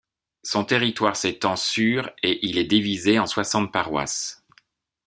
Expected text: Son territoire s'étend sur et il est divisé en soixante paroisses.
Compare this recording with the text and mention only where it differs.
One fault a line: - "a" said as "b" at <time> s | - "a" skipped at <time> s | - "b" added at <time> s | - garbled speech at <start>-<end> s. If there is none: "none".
none